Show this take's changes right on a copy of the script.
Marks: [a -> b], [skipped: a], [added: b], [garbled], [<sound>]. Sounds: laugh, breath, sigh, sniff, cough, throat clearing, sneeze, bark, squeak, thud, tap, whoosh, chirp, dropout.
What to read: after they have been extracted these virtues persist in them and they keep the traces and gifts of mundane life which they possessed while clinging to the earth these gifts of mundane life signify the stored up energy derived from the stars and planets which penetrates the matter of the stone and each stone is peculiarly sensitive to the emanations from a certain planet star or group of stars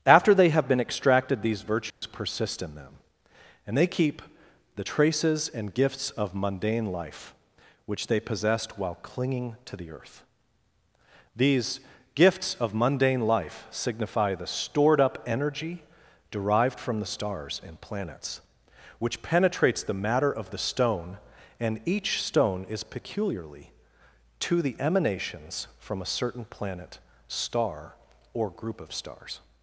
after they have been extracted these virtues [dropout] persist in them and they keep the traces and gifts of mundane life which they possessed while clinging to the earth these gifts of mundane life signify the stored up energy derived from the stars and planets which penetrates the matter of the stone and each stone is peculiarly [skipped: sensitive] to the emanations from a certain planet star or group of stars